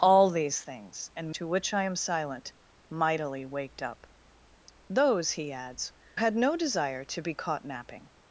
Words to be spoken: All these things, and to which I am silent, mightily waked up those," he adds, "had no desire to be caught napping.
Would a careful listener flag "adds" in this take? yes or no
no